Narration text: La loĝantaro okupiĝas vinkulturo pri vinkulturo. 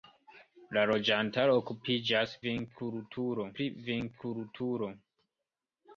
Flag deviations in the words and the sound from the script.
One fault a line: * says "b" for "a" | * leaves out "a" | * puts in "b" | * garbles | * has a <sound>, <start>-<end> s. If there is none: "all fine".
all fine